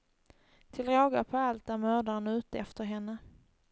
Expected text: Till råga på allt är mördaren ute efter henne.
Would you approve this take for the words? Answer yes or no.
yes